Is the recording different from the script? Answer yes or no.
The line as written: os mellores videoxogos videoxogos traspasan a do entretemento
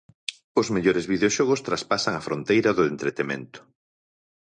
yes